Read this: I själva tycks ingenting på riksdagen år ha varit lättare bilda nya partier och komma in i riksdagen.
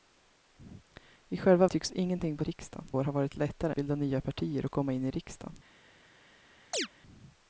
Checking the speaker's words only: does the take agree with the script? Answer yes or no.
yes